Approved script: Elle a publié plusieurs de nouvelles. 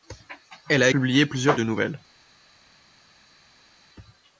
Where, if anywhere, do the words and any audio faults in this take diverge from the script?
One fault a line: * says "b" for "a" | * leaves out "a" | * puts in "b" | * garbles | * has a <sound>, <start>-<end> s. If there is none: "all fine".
all fine